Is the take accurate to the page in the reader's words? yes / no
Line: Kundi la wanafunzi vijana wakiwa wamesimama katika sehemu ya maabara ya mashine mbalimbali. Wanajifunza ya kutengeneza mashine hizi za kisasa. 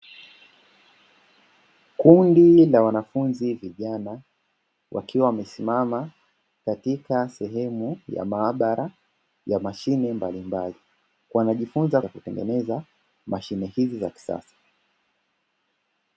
yes